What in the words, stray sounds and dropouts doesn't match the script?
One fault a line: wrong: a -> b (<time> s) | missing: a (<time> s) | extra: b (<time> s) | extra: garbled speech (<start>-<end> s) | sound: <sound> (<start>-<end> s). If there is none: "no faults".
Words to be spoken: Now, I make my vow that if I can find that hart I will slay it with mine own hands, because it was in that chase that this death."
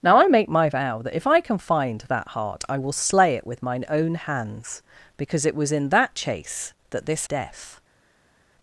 no faults